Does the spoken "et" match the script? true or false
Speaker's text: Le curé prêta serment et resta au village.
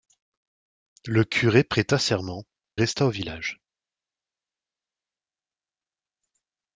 false